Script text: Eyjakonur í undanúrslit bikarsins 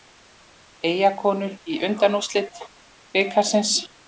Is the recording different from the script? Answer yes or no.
no